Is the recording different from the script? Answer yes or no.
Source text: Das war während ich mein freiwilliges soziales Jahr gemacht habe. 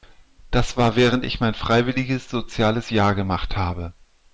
no